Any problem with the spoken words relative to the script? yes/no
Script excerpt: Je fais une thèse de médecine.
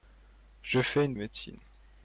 yes